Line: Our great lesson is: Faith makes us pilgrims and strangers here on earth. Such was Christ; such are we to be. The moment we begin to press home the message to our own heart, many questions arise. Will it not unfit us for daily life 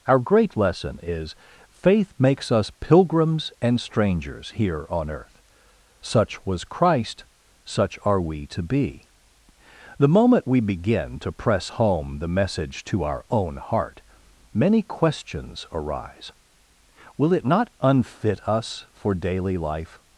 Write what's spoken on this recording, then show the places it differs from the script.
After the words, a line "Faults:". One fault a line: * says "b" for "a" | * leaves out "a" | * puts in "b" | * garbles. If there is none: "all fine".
Our great lesson is: Faith makes us pilgrims and strangers here on earth. Such was Christ; such are we to be. The moment we begin to press home the message to our own heart, many questions arise. Will it not unfit us for daily life
Faults:
all fine